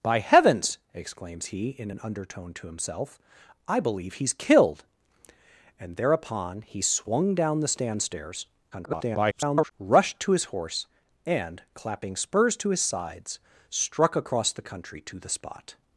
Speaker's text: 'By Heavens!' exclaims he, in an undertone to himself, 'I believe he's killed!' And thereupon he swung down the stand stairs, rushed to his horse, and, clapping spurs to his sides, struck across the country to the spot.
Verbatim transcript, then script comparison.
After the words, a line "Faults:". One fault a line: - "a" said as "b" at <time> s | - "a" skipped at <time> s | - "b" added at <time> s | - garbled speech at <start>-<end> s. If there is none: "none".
'By Heavens!' exclaims he, in an undertone to himself, 'I believe he's killed!' And thereupon he swung down the stand stairs, [garbled] rushed to his horse, and, clapping spurs to his sides, struck across the country to the spot.
Faults:
- garbled speech at 8.7-9.7 s